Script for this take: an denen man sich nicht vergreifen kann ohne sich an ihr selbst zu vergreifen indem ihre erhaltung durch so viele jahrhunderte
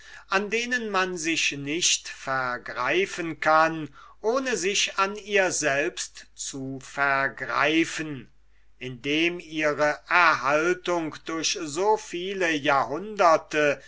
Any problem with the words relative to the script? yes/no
no